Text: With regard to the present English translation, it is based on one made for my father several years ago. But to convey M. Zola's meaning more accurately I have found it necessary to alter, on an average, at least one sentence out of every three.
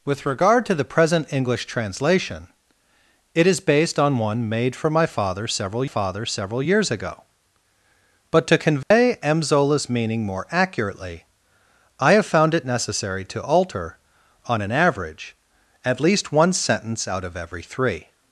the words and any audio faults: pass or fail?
fail